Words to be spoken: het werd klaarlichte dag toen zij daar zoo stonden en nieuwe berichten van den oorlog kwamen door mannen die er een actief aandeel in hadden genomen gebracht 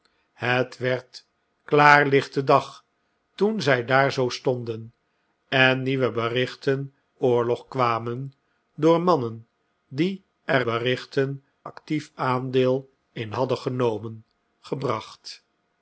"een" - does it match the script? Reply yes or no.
no